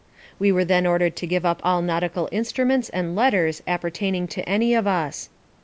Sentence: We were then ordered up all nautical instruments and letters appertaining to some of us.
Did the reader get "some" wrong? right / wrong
wrong